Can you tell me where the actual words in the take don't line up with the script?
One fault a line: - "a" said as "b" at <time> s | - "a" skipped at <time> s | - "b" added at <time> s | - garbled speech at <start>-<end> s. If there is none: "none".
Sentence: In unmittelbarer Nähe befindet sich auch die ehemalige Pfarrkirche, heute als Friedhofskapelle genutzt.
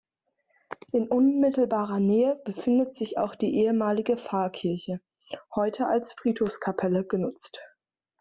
none